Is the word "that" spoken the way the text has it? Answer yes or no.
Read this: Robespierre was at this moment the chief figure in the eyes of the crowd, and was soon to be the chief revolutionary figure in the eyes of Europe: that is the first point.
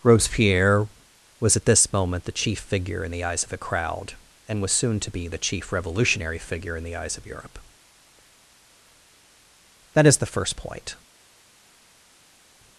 yes